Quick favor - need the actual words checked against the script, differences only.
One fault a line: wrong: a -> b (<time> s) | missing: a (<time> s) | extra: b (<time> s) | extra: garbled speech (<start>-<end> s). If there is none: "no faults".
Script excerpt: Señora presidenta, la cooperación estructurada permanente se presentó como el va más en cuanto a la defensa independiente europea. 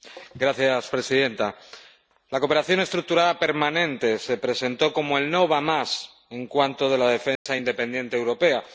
extra: no (5.3 s)